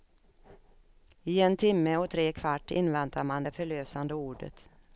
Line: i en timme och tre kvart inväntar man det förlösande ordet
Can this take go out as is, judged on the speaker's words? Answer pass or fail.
pass